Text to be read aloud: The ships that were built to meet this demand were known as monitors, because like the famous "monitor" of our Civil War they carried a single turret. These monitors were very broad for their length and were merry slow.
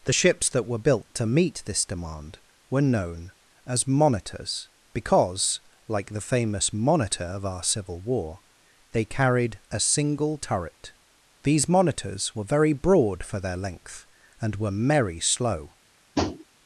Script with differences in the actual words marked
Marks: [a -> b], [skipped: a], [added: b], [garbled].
The ships that were built to meet this demand were known as monitors, because like the famous "monitor" of our Civil War they carried a single turret. These monitors were very broad for their length and were merry slow.